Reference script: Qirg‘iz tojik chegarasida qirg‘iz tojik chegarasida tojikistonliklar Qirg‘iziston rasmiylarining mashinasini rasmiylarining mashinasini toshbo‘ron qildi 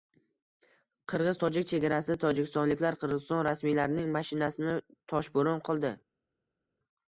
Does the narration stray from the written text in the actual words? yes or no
yes